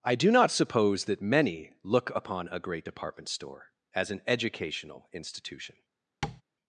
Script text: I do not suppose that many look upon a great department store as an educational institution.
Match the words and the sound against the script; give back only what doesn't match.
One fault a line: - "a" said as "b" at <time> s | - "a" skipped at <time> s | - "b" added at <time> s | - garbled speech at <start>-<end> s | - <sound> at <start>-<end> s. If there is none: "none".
- tap at 6.2-6.4 s